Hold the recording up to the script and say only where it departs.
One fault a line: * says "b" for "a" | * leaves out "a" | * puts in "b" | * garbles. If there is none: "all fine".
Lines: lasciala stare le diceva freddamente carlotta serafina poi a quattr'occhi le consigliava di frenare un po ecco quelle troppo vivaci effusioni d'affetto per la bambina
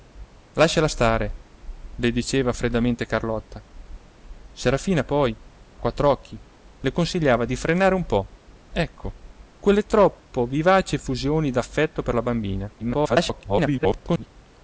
* leaves out "a"
* garbles